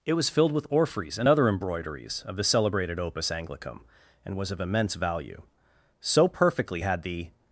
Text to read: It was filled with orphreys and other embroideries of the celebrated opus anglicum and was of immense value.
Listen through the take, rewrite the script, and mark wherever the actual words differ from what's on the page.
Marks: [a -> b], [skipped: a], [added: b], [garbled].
It was filled with orphreys and other embroideries of the celebrated opus anglicum and was of immense value. [added: So perfectly had the]